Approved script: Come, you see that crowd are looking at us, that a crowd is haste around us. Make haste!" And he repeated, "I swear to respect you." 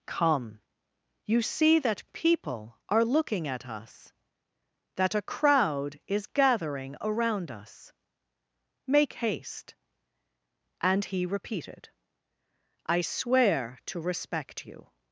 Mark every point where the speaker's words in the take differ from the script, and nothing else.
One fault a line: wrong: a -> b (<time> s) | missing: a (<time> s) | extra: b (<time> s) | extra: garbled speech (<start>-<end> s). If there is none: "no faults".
wrong: crowd -> people (2.1 s)
wrong: haste -> gathering (6.3 s)